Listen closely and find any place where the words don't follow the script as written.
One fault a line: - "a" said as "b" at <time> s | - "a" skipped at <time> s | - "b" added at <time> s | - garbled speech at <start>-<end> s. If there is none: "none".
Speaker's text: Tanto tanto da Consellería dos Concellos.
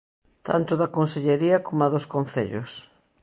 - "tanto" skipped at 0.7 s
- "coma" added at 1.7 s